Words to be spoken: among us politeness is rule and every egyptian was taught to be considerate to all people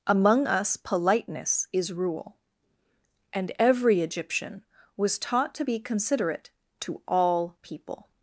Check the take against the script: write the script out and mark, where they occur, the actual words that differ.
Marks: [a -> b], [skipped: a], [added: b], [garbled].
among us politeness is rule and every egyptian was taught to be considerate to all people